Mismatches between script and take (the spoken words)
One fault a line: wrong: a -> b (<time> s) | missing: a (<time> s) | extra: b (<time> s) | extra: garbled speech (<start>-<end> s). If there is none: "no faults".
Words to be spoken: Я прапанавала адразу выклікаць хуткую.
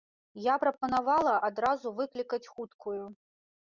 no faults